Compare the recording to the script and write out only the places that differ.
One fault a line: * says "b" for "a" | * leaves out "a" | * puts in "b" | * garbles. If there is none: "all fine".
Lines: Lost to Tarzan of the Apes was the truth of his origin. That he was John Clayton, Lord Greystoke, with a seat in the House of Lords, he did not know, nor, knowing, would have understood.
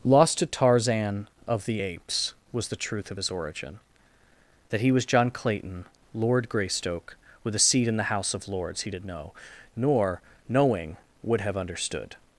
* leaves out "not"